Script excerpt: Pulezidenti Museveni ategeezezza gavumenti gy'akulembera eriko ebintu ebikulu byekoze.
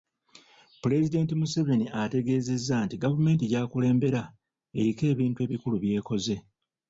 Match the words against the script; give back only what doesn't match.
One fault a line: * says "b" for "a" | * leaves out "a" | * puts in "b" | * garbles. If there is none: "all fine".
* puts in "nti"